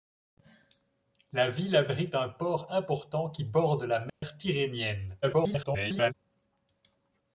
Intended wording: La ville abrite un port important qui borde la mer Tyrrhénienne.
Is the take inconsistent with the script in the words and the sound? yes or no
yes